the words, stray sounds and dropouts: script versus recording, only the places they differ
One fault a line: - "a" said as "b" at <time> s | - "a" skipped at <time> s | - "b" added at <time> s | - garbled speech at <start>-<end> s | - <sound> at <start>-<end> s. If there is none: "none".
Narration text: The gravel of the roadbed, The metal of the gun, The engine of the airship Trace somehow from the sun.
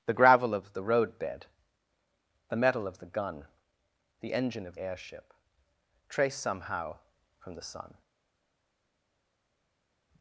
- "the" skipped at 4.8 s